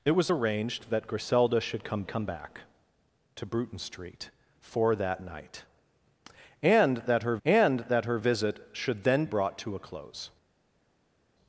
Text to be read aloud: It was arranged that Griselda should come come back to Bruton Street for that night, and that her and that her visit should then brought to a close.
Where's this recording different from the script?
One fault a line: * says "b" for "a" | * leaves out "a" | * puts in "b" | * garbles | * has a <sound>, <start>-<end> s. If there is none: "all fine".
all fine